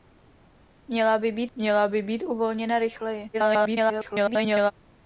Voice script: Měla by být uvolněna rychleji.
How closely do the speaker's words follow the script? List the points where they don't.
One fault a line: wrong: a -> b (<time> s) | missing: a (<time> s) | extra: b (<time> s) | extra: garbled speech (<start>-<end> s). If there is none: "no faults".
extra: měla by být (1.6 s)
extra: garbled speech (3.3-4.7 s)